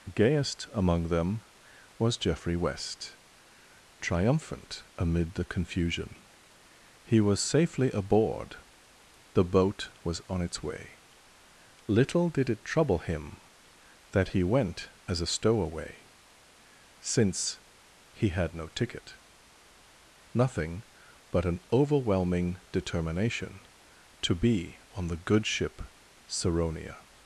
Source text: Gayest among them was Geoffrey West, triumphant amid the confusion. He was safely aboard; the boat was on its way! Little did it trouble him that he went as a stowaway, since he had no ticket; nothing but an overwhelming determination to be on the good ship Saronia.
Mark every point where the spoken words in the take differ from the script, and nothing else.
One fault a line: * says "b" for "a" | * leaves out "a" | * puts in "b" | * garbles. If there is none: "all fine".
all fine